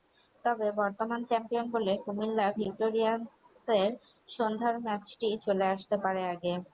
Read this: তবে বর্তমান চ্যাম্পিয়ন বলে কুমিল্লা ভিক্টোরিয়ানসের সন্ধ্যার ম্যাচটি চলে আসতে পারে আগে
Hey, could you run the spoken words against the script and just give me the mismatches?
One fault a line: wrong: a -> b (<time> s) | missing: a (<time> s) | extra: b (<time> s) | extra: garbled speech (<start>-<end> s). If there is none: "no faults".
no faults